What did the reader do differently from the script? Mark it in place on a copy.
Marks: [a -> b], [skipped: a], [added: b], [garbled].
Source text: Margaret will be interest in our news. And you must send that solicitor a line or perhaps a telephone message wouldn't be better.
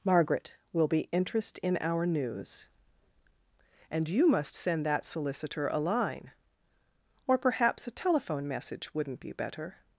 Margaret will be interest in our news. And you must send that solicitor a line or perhaps a telephone message wouldn't be better.